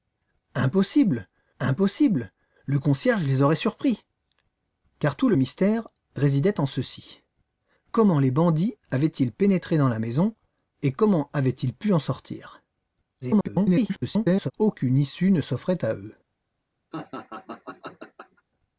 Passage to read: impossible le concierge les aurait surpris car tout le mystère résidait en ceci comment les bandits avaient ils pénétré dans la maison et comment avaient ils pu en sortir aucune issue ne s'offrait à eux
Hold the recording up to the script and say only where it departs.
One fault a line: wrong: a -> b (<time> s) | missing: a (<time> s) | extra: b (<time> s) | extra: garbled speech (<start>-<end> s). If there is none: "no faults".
extra: impossible (1.6 s)
extra: garbled speech (13.2-14.5 s)